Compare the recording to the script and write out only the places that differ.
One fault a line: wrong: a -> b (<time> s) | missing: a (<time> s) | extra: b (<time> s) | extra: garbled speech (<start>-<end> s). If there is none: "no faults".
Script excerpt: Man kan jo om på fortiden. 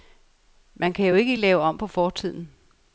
extra: ikke lave (1.1 s)